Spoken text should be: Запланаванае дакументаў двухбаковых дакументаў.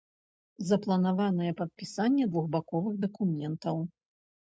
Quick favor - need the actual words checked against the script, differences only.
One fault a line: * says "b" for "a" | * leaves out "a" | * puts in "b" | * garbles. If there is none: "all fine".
* says "падпісанне" for "дакументаў"